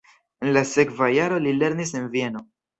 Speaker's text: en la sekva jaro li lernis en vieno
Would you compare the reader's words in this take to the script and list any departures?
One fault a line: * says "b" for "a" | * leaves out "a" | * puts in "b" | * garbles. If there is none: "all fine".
all fine